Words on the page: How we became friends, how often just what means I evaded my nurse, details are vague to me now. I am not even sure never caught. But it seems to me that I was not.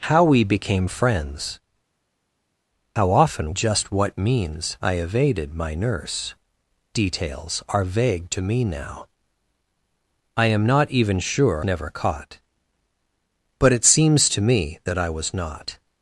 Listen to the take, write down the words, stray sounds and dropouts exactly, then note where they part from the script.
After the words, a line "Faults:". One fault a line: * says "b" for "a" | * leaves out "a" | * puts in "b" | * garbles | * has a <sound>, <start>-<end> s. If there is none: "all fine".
How we became friends, how often just what means I evaded my nurse, details are vague to me now. I am not even sure never caught. But it seems to me that I was not.
Faults:
all fine